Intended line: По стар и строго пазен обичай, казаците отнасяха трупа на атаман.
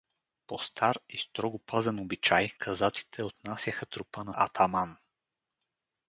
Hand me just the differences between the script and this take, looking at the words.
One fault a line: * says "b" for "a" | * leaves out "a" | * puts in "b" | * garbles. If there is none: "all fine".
all fine